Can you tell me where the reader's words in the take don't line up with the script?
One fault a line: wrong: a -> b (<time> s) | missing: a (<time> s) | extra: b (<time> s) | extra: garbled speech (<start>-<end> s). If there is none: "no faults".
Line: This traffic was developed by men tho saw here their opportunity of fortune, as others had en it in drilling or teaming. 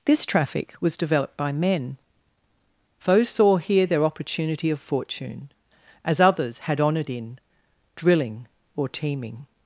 wrong: tho -> foes (3.0 s)
wrong: en it -> honoured (6.8 s)